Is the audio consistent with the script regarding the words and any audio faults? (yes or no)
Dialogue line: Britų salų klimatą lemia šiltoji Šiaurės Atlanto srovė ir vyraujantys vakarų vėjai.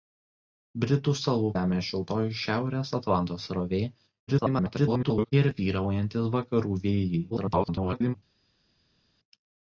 no